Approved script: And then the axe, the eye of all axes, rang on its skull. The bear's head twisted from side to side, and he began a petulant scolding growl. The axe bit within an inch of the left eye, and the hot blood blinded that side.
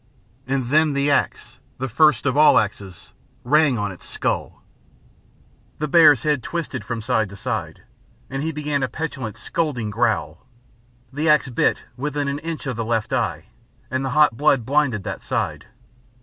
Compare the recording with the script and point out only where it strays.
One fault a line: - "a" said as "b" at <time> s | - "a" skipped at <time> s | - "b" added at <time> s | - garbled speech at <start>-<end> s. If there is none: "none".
- "eye" said as "first" at 1.9 s